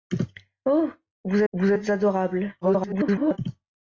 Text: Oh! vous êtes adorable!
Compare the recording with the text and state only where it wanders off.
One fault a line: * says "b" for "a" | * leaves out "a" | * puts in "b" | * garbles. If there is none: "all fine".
* puts in "vous"
* garbles